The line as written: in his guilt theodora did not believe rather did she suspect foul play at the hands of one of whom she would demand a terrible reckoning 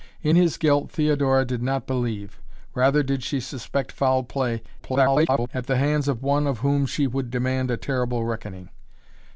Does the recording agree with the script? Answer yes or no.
no